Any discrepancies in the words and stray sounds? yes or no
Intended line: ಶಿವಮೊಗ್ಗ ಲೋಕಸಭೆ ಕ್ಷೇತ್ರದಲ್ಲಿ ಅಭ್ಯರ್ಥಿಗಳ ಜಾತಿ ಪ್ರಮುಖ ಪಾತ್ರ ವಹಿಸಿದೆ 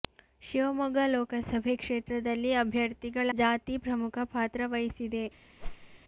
yes